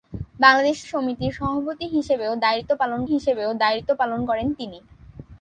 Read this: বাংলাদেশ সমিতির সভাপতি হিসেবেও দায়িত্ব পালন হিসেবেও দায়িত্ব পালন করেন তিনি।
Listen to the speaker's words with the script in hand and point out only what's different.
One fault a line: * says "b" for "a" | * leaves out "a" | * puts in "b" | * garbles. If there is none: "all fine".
all fine